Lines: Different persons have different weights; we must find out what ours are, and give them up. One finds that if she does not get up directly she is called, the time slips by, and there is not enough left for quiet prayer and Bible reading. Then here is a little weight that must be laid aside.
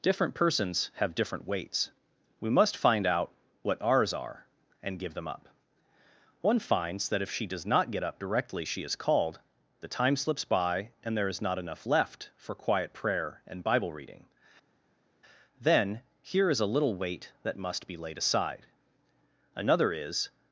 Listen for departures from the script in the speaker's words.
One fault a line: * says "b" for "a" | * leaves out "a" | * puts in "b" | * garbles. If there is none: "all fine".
* puts in "Another is"